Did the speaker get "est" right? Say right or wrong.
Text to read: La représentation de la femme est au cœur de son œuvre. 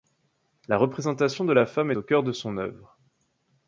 wrong